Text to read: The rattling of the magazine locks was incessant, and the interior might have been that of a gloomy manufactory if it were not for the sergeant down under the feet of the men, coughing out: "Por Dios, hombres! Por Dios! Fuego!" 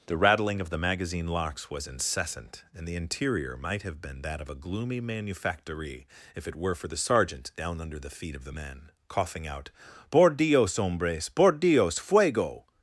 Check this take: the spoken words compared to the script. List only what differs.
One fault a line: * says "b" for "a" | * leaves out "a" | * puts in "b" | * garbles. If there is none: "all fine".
* leaves out "not"